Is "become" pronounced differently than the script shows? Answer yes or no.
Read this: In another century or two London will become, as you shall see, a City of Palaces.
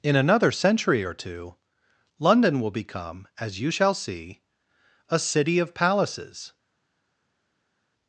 no